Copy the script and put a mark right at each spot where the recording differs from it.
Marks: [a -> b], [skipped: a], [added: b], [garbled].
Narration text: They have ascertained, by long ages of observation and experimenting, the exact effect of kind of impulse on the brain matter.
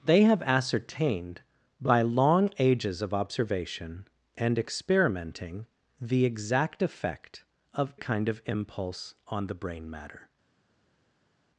They have ascertained, by long ages of observation and experimenting, the exact effect of kind of impulse on the brain matter.